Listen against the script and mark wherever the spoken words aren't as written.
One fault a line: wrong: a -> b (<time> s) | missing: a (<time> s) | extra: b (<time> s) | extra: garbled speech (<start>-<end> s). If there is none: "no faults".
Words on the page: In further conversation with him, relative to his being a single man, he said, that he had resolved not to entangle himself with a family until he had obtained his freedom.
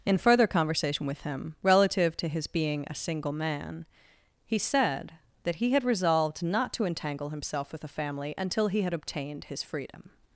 no faults